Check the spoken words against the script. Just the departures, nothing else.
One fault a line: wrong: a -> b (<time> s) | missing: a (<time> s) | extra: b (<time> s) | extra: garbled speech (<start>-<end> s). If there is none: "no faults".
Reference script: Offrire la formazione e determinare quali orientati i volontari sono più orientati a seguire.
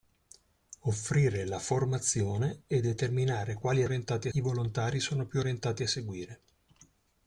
no faults